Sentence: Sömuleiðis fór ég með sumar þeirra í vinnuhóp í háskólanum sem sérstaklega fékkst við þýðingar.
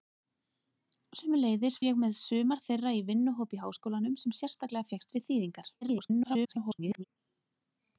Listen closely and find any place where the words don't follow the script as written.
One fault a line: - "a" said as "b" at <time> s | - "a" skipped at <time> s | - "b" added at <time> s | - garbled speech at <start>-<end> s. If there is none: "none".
- "fór" skipped at 1.8 s
- garbled speech at 5.8-7.0 s